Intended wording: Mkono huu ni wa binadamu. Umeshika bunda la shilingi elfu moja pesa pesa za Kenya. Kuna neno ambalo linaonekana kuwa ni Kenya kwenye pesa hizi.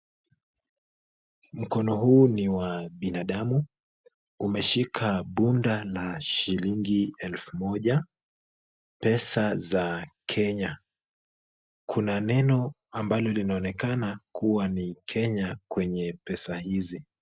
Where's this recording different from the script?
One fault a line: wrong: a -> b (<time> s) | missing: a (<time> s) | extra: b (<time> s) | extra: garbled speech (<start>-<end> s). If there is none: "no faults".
missing: pesa (9.6 s)